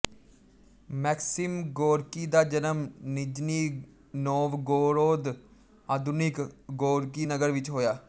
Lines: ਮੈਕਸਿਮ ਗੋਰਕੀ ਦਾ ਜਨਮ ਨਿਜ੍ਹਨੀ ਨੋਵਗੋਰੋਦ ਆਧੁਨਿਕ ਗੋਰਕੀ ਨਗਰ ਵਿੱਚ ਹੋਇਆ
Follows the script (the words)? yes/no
yes